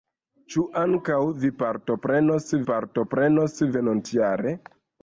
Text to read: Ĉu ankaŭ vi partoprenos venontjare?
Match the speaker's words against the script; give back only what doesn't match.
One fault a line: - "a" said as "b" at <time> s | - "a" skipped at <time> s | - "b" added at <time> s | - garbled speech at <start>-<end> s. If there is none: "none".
- "partoprenos" added at 2.7 s